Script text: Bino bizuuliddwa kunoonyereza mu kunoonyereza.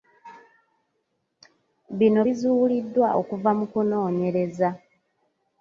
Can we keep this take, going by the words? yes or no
no